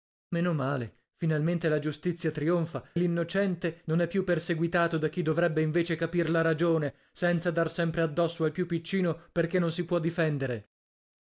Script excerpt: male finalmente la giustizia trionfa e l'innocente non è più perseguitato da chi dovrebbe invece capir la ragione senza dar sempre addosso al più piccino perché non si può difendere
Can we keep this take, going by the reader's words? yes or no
no